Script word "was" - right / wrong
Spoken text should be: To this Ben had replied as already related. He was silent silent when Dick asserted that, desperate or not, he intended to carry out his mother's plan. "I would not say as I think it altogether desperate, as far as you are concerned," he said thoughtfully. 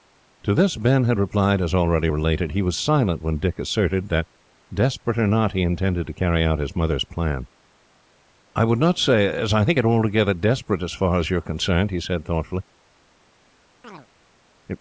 right